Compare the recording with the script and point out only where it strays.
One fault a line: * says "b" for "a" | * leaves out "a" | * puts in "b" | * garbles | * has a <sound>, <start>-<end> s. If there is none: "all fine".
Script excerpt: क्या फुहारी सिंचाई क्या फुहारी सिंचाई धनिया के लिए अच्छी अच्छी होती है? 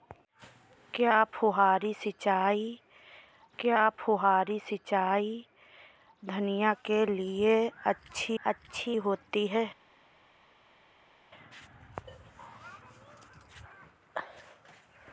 all fine